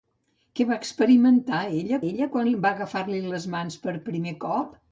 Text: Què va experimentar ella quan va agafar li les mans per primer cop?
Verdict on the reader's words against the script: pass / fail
fail